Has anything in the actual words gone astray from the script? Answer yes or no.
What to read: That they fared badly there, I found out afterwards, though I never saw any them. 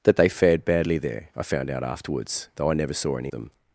no